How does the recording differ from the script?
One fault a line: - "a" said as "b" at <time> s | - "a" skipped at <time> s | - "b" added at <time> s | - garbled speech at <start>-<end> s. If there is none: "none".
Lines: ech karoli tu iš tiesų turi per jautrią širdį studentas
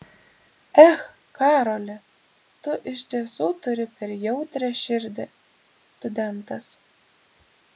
none